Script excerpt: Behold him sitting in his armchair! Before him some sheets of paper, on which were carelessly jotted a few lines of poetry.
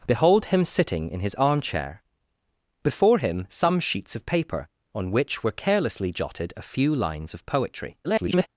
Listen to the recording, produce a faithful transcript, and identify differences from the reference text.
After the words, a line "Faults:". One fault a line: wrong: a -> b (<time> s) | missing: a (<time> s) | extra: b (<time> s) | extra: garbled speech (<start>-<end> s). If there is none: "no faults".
Behold him sitting in his armchair! Before him some sheets of paper, on which were carelessly jotted a few lines of poetry. [garbled]
Faults:
extra: garbled speech (8.0-8.5 s)